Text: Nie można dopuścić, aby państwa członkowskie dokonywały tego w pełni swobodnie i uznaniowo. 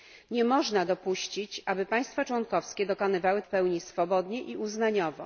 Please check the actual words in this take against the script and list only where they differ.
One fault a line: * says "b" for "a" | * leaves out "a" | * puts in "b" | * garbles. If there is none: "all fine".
* leaves out "tego"